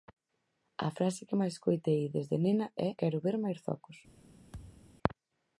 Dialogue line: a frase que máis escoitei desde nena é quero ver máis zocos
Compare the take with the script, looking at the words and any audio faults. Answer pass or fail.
fail